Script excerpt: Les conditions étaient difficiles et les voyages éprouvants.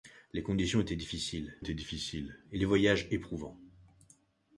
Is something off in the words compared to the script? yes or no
yes